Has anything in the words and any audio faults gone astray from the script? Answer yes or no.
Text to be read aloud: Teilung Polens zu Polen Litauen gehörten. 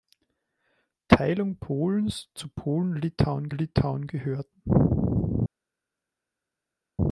yes